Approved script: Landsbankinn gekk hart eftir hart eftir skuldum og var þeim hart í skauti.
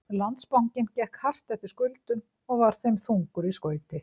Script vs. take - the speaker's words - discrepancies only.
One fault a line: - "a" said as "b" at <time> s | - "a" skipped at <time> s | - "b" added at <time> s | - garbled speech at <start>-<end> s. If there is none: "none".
- "hart eftir" skipped at 1.7 s
- "hart" said as "þungur" at 3.1 s